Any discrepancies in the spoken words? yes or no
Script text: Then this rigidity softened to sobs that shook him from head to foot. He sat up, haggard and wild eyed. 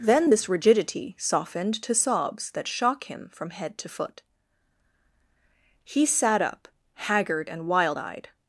yes